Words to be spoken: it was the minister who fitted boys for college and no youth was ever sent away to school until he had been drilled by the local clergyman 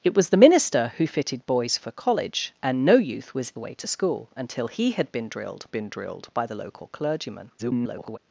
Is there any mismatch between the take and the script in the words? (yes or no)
yes